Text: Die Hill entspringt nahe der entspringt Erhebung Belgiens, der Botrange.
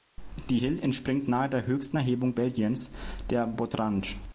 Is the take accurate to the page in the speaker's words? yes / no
no